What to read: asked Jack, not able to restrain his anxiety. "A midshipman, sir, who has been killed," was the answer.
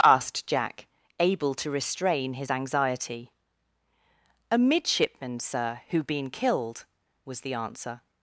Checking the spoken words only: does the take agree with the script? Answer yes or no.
no